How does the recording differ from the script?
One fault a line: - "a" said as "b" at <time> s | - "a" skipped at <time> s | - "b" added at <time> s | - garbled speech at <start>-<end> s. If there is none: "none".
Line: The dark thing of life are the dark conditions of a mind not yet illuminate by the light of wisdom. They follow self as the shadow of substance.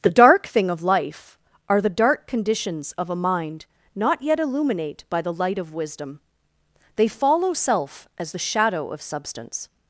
none